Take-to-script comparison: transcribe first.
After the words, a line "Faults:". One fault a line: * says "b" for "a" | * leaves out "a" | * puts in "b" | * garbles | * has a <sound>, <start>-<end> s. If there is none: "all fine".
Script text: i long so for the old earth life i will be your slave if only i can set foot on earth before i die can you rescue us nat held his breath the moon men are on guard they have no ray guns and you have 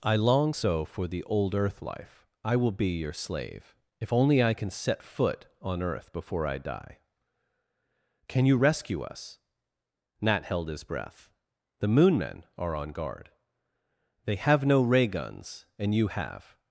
i long so for the old earth life i will be your slave if only i can set foot on earth before i die can you rescue us nat held his breath the moon men are on guard they have no ray guns and you have
Faults:
all fine